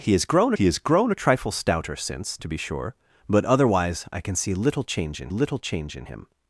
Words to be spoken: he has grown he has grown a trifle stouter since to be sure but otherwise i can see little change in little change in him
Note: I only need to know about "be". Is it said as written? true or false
true